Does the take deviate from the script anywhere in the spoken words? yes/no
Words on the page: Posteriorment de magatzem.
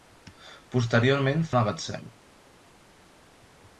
no